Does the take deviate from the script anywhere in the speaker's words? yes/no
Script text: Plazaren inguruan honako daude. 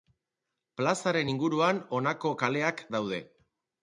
yes